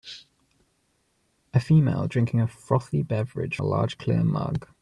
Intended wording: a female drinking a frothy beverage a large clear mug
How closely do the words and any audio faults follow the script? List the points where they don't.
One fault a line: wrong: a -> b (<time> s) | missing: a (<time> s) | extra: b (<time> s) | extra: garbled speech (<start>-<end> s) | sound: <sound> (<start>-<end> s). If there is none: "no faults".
no faults